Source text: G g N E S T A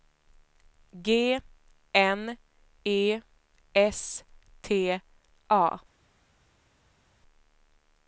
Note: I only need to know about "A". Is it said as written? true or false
true